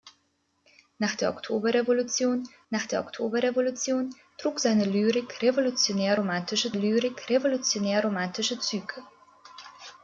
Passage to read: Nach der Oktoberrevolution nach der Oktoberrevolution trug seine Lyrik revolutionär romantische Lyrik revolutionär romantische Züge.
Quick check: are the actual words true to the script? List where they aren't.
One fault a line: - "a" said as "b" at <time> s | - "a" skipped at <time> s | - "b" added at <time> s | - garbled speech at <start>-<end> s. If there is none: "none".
none